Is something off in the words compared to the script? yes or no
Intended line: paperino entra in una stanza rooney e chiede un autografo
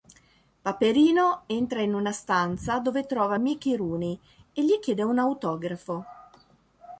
yes